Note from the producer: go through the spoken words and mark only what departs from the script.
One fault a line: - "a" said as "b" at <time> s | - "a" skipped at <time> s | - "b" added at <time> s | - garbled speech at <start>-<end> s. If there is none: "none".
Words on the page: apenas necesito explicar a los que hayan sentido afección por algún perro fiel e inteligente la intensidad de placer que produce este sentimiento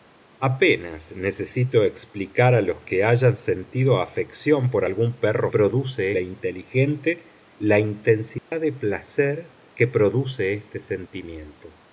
- "fiel" said as "produce" at 5.5 s